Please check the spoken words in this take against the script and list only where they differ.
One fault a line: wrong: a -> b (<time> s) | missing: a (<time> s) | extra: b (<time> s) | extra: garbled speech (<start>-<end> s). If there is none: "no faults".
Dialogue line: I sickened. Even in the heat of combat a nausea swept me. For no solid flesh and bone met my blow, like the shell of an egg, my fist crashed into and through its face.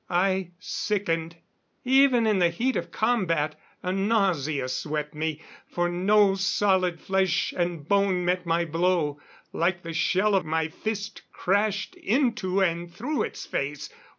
missing: an egg (10.4 s)